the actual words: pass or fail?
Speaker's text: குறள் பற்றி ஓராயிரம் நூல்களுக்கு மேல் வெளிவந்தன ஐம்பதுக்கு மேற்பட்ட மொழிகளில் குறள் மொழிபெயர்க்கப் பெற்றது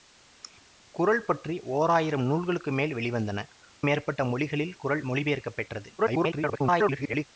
fail